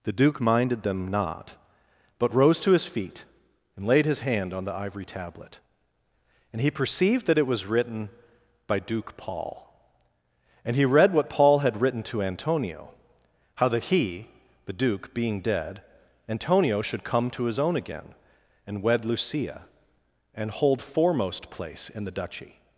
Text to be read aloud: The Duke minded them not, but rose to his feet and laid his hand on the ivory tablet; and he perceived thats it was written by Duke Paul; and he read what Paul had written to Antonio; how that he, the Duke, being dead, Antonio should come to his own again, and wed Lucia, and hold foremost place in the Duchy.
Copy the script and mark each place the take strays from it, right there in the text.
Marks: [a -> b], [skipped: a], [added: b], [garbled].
The Duke minded them not, but rose to his feet and laid his hand on the ivory tablet; and he perceived [thats -> that] it was written by Duke Paul; and he read what Paul had written to Antonio; how that he, the Duke, being dead, Antonio should come to his own again, and wed Lucia, and hold foremost place in the Duchy.